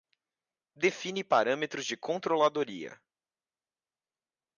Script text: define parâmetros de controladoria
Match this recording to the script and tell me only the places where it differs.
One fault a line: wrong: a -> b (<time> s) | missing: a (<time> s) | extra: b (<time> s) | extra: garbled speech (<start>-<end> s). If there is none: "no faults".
no faults